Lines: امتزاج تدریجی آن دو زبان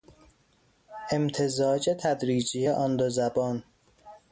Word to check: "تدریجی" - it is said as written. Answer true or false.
true